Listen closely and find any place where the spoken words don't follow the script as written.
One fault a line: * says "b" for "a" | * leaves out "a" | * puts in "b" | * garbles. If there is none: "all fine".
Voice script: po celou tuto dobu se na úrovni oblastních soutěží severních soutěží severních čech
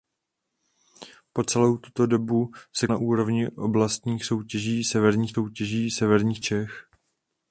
all fine